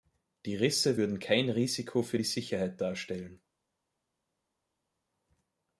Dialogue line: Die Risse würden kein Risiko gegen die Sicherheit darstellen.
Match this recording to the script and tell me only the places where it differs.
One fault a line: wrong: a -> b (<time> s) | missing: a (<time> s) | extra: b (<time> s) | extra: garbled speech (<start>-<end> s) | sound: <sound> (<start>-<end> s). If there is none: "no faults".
wrong: gegen -> für (2.0 s)